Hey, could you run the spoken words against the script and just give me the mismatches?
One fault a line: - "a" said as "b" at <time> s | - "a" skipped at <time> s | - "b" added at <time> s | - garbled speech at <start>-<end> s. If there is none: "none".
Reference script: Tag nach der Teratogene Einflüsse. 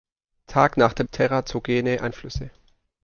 none